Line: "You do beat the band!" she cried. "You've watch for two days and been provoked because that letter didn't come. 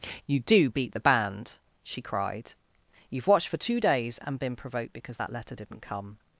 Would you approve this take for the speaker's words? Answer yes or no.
no